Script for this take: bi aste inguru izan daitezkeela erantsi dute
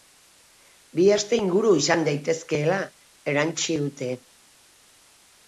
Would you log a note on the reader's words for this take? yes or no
no